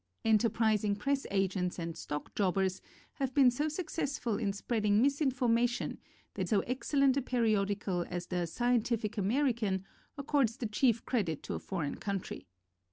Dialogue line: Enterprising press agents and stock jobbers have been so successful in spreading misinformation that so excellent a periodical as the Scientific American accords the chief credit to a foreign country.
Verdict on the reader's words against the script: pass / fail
pass